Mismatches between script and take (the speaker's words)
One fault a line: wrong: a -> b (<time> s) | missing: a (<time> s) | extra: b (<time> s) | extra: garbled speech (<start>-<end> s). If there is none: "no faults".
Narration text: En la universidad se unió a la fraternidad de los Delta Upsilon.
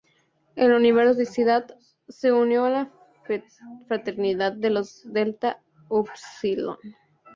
no faults